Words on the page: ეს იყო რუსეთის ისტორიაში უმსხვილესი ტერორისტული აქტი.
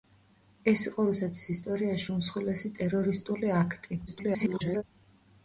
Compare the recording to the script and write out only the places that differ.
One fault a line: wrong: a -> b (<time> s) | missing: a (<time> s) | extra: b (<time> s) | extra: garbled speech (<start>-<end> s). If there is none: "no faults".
extra: garbled speech (4.1-4.8 s)